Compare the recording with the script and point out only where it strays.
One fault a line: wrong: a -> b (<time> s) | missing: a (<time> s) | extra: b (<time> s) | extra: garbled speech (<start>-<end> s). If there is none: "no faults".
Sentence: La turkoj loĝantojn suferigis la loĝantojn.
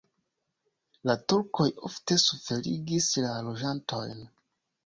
wrong: loĝantojn -> ofte (1.9 s)